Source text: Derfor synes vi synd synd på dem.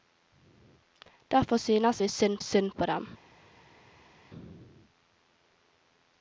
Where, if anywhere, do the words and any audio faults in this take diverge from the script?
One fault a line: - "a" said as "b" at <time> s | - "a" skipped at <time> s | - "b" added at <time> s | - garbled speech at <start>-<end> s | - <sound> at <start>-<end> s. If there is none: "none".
none